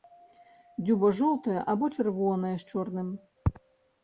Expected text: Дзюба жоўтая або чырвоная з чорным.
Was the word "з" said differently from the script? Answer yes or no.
no